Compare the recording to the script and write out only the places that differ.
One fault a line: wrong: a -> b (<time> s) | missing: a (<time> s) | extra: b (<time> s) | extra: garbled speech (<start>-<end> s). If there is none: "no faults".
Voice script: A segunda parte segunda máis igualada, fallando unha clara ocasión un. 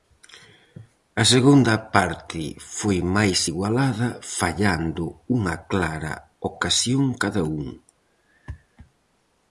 wrong: segunda -> foi (2.8 s)
extra: cada (7.2 s)